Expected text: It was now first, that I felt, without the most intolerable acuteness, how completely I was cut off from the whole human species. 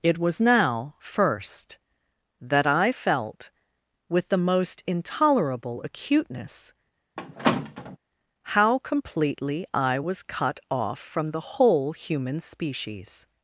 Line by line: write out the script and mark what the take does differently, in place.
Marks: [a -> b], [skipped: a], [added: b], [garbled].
It was now first, that I felt, [without -> with] the most intolerable acuteness, how completely I was cut off from the whole human species.